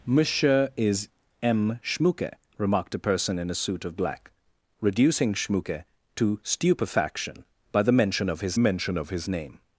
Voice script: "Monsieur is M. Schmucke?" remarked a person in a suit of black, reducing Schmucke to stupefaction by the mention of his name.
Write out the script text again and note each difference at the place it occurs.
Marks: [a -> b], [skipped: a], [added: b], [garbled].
"Monsieur is M. Schmucke?" remarked a person in a suit of black, reducing Schmucke to stupefaction by the mention of his [added: mention of his] name.